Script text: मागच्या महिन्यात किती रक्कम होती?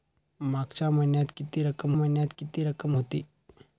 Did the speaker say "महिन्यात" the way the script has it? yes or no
yes